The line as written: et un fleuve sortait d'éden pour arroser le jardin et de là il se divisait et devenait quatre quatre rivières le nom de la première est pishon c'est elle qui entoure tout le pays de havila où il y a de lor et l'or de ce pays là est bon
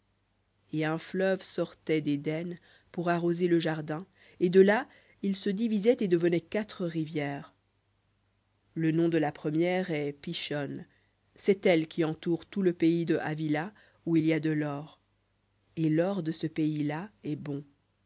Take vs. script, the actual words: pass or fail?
fail